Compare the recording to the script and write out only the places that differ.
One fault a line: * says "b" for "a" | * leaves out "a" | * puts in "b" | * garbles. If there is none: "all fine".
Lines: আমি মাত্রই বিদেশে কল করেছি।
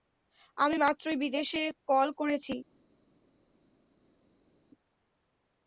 all fine